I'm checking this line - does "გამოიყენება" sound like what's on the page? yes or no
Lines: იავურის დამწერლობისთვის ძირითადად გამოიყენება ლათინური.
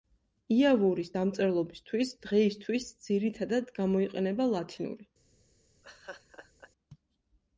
yes